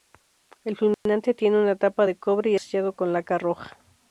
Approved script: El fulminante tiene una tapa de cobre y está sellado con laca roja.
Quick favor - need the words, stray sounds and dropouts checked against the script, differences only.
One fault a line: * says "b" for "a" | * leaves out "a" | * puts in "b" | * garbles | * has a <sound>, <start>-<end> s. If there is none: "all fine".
* has a dropout, 0.9-1.1 s
* leaves out "está"